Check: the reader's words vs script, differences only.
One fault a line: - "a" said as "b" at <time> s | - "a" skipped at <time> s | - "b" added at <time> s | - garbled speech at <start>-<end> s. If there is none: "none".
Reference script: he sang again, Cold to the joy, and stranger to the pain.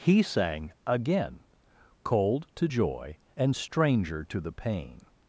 - "the" skipped at 2.7 s